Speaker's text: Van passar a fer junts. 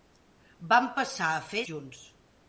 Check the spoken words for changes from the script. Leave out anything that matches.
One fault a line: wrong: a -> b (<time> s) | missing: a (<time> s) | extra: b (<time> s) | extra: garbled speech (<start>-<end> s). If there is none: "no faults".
no faults